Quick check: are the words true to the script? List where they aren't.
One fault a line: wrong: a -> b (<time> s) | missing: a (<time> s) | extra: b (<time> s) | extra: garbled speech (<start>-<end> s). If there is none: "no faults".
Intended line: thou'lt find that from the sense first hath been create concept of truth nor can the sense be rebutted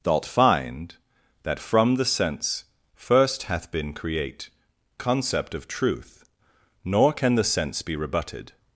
no faults